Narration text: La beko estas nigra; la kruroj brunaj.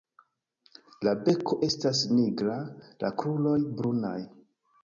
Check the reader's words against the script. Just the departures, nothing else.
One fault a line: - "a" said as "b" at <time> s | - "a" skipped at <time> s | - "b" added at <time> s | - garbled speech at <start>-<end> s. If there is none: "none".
none